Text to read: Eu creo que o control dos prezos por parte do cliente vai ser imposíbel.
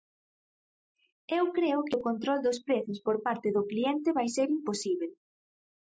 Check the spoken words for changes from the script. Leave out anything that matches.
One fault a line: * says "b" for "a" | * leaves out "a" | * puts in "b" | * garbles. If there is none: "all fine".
all fine